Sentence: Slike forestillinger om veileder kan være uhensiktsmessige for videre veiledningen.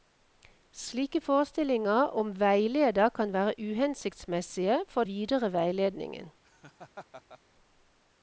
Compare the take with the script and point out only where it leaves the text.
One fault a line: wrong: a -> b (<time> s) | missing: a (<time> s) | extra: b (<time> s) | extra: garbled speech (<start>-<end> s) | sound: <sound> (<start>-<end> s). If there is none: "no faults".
sound: laugh (6.4-7.4 s)